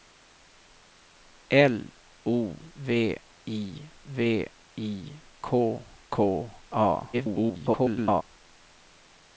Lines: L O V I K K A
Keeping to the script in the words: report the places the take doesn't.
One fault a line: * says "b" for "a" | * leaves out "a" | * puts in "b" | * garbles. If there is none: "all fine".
* puts in "V I"
* garbles